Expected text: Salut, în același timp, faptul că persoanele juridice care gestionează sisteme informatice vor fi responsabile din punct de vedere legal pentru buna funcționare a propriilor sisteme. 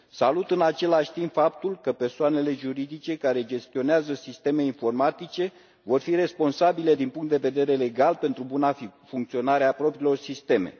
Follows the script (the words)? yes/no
yes